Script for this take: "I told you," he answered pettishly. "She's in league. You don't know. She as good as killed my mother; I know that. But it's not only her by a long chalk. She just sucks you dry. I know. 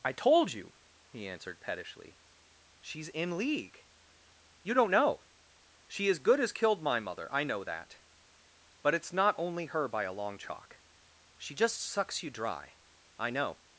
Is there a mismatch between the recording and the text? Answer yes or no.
no